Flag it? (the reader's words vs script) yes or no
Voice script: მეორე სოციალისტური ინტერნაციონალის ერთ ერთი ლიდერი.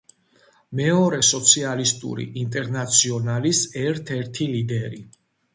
no